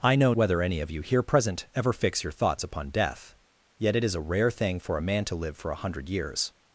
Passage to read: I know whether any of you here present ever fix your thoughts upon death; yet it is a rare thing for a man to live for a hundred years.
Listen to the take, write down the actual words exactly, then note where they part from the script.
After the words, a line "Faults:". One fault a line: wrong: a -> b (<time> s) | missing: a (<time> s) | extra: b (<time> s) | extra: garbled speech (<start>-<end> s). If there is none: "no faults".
I know whether any of you here present ever fix your thoughts upon death; yet it is a rare thing for a man to live for a hundred years.
Faults:
no faults